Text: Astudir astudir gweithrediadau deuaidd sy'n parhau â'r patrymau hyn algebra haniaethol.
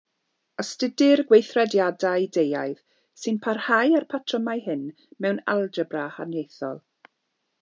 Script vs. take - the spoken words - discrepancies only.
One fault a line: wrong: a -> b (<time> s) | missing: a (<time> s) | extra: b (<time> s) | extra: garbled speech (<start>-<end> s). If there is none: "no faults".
missing: astudir (1.2 s)
extra: mewn (5.3 s)